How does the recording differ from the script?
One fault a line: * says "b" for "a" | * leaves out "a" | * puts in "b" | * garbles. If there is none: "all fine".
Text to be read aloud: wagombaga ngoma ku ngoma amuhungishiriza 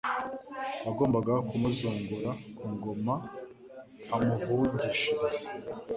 * says "kumuzungura" for "ngoma"